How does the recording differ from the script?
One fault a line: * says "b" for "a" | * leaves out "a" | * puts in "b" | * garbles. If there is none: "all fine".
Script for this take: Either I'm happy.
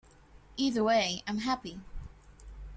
* puts in "way"